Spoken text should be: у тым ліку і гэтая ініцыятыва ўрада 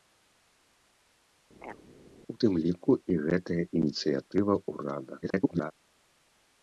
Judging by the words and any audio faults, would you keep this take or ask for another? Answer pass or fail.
fail